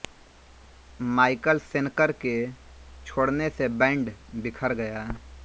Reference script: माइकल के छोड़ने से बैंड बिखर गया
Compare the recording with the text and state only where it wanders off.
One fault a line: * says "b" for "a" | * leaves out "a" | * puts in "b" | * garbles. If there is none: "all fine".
* puts in "शेनकर"